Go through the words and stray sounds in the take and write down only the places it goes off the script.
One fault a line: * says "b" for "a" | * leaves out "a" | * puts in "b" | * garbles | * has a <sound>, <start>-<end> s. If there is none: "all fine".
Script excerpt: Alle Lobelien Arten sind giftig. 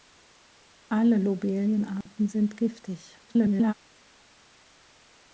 * has a dropout, 2.0-2.1 s
* garbles